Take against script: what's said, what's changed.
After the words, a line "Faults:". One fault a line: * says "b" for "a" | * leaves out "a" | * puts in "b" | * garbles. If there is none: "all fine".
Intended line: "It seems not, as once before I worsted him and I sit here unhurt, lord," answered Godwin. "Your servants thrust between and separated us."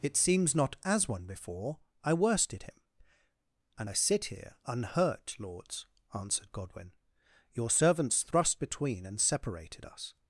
"It seems not, as one before I worsted him and I sit here unhurt, lords," answered Godwin. "Your servants thrust between and separated us."
Faults:
* says "one" for "once"
* says "lords" for "lord"